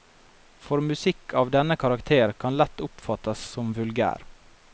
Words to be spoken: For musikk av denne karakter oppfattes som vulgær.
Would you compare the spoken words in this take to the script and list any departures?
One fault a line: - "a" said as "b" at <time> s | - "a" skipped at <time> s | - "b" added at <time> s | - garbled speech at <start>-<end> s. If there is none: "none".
- "kan lett" added at 2.5 s